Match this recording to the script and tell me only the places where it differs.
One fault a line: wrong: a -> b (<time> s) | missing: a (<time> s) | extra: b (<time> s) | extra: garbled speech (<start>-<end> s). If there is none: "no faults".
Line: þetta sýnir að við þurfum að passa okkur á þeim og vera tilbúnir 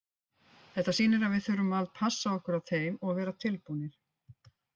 no faults